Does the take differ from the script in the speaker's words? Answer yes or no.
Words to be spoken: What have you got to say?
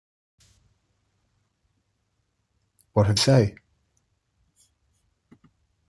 yes